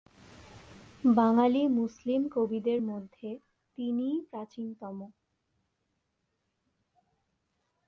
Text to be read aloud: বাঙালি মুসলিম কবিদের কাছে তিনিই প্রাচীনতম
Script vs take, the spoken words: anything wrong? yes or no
yes